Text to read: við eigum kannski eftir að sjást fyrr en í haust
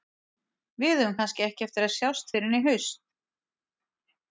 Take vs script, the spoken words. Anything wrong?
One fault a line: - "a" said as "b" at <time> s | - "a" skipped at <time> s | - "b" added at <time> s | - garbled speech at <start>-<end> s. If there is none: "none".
- "ekki" added at 1.5 s